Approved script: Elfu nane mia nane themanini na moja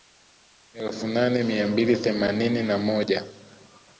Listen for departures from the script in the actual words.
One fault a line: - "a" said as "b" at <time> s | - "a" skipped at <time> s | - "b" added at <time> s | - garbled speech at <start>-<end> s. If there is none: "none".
- "nane" said as "mbili" at 1.7 s